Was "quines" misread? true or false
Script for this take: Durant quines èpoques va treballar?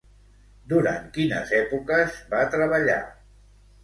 false